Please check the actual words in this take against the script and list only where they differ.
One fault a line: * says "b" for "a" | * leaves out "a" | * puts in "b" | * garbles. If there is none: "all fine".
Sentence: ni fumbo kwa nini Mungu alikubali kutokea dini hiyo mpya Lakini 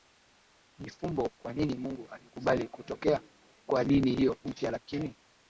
* puts in "kwa"